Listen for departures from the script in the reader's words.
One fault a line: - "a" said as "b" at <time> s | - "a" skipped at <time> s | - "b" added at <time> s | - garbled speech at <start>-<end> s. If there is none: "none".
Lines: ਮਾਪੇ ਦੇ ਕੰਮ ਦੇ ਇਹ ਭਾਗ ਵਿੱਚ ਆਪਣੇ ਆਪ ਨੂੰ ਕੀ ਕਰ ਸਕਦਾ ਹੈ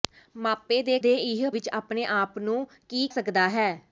- "ਕੰਮ" skipped at 1.0 s
- "ਭਾਗ" skipped at 1.5 s
- "ਕਰ" skipped at 3.1 s